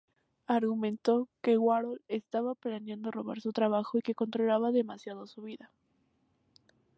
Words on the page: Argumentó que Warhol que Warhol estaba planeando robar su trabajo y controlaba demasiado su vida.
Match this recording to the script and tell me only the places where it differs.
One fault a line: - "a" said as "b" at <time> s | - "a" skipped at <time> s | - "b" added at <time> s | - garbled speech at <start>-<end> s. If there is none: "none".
- "que Warhol" skipped at 2.0 s
- "que" added at 4.0 s